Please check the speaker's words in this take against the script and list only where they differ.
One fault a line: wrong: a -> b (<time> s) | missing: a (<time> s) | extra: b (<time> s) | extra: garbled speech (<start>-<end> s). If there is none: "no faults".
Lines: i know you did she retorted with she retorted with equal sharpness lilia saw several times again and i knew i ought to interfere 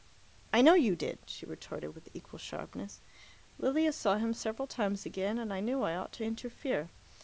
missing: she retorted with (2.1 s)
extra: him (4.2 s)